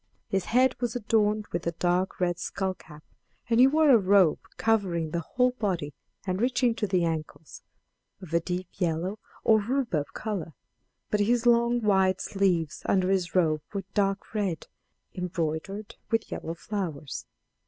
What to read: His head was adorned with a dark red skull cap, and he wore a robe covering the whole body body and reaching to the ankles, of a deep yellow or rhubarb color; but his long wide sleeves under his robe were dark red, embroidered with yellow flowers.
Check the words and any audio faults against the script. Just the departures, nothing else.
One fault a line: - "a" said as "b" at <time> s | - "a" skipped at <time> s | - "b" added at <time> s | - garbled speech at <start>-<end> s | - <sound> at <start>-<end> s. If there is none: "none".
- "body" skipped at 5.9 s